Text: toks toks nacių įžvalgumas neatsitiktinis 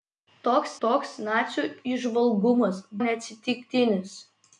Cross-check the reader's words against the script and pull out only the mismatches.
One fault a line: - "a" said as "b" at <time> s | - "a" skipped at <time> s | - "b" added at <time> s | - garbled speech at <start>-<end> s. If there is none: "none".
none